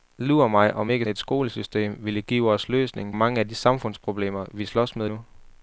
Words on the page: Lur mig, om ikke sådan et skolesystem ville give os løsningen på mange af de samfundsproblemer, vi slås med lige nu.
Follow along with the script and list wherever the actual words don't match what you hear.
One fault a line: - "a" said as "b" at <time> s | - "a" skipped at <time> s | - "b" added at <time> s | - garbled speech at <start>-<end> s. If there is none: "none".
- "sådan" skipped at 1.0 s
- "på" skipped at 3.1 s
- "lige" skipped at 5.1 s